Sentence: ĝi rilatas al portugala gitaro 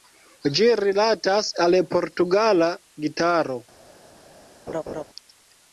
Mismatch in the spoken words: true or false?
false